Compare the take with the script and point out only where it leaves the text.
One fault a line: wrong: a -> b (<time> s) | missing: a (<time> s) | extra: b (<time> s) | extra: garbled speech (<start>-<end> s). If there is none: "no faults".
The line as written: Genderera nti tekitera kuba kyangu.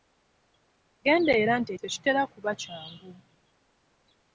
no faults